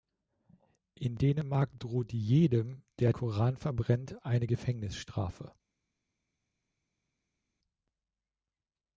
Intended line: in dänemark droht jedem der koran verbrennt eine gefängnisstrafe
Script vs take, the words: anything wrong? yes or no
no